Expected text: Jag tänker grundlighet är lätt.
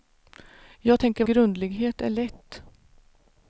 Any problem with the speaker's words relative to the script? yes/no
no